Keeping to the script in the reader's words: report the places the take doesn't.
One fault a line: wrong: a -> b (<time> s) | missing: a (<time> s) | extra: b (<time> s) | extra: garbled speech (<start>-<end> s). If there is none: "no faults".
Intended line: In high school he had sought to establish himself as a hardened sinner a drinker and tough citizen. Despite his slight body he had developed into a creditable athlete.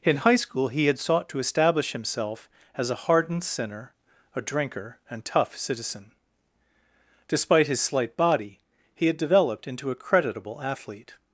no faults